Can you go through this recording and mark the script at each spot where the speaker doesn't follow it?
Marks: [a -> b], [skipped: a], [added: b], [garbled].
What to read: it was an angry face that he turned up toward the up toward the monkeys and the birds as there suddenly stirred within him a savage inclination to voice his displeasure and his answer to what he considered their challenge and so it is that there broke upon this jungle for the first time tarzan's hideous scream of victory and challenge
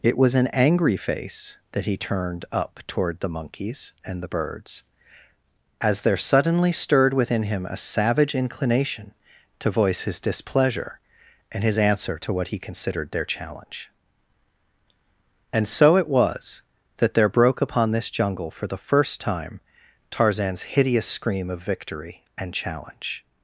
it was an angry face that he turned up toward the [skipped: up toward the] monkeys and the birds as there suddenly stirred within him a savage inclination to voice his displeasure and his answer to what he considered their challenge and so it [is -> was] that there broke upon this jungle for the first time tarzan's hideous scream of victory and challenge